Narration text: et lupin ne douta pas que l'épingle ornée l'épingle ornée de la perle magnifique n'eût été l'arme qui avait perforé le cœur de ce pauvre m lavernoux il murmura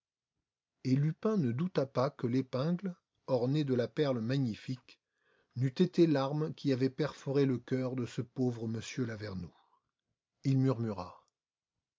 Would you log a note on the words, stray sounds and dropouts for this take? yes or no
yes